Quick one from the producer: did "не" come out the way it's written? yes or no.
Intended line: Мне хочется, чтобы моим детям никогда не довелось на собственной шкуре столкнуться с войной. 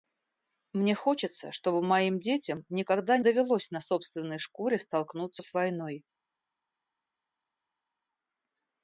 no